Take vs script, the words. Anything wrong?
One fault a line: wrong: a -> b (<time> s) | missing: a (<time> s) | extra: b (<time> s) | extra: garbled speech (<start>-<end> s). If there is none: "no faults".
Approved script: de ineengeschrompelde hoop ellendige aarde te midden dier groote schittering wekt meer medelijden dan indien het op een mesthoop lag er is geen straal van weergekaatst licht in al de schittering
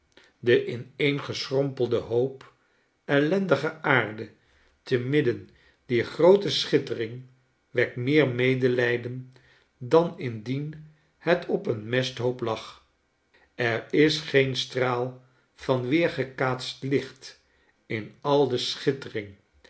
no faults